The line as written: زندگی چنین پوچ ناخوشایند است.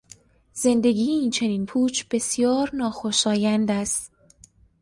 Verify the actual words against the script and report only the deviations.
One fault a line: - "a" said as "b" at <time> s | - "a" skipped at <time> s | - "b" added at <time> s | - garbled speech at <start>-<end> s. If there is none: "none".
- "این" added at 1.1 s
- "بسیار" added at 2.1 s